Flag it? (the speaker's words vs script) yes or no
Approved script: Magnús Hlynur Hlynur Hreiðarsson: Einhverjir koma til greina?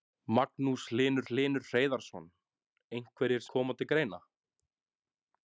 no